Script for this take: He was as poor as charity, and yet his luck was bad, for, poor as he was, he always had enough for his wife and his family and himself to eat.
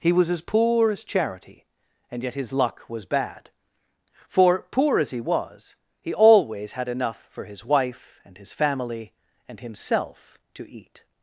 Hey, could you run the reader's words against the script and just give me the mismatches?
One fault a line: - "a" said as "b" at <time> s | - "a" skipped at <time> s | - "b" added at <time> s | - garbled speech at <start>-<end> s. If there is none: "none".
none